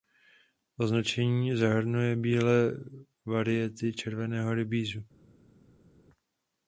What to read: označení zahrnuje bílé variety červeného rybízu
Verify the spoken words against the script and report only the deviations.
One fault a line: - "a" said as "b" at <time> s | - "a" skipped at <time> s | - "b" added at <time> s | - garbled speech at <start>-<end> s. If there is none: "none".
none